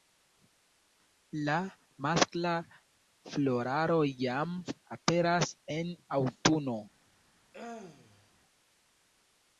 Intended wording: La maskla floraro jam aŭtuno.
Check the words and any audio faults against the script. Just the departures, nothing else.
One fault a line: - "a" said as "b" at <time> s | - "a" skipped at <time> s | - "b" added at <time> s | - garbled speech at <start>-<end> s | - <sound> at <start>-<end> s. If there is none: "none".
- "aperas en" added at 5.0 s
- throat clearing at 7.5-8.3 s